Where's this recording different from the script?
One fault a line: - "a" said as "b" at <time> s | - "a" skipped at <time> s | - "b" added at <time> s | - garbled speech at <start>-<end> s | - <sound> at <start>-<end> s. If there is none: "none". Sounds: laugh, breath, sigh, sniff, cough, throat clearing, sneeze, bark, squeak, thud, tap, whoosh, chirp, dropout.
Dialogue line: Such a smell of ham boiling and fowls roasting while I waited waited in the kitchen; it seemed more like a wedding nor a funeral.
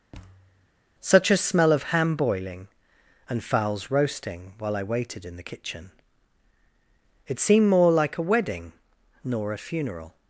- thud at 0.1-0.7 s
- "waited" skipped at 5.2 s